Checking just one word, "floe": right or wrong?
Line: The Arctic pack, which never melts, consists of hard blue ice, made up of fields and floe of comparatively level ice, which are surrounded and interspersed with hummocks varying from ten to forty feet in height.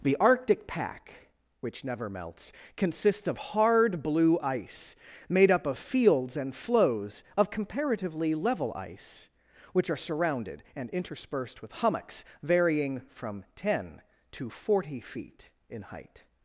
wrong